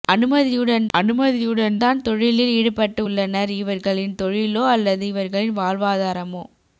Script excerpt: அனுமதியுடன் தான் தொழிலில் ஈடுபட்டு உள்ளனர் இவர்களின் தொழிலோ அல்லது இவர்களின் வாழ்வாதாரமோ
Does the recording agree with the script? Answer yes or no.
no